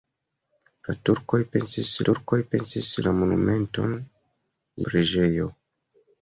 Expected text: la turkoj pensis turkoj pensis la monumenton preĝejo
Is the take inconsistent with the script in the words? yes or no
no